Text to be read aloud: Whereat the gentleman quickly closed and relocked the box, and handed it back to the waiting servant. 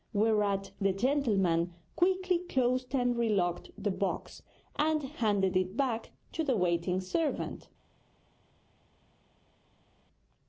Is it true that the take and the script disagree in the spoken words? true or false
false